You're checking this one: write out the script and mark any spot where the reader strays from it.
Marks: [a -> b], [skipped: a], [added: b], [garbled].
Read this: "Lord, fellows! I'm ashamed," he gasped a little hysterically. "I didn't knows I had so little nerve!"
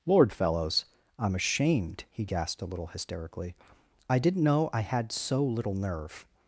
"Lord, fellows! I'm ashamed," he gasped a little hysterically. "I didn't [knows -> know] I had so little nerve!"